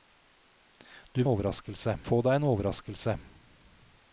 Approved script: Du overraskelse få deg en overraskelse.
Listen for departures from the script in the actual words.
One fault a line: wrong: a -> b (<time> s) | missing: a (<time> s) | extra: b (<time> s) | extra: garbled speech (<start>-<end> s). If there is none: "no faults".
no faults